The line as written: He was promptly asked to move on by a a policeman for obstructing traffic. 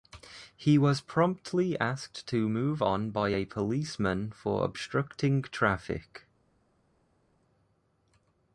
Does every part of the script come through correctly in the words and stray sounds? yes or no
no